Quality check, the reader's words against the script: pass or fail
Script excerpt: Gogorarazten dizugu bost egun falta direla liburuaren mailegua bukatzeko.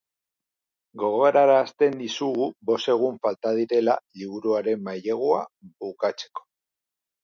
pass